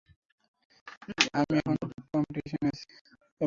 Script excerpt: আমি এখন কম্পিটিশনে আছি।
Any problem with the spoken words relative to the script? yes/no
no